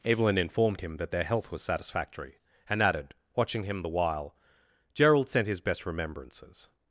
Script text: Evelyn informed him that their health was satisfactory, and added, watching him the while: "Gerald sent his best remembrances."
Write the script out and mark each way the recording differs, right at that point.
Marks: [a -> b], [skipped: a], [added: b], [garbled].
Evelyn informed him that their health was satisfactory, and added, watching him the while: "Gerald sent his best remembrances."